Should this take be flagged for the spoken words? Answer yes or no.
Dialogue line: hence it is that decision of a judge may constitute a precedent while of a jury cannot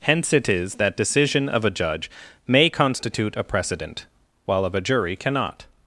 no